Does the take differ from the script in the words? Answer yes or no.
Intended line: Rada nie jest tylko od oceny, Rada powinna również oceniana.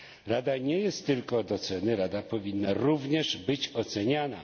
yes